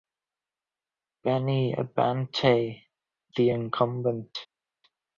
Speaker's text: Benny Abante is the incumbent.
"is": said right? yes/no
no